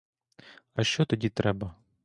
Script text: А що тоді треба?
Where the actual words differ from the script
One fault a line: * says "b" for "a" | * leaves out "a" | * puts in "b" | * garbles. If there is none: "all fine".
all fine